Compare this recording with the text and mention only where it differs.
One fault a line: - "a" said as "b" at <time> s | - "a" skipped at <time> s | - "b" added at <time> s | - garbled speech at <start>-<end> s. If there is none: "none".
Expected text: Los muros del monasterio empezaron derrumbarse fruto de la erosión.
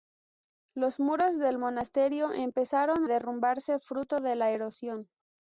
none